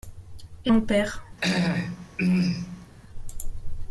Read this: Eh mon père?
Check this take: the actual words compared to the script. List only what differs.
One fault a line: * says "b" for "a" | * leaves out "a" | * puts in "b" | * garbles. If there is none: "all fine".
all fine